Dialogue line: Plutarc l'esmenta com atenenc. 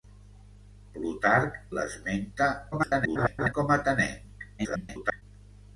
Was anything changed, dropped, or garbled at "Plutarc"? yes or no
no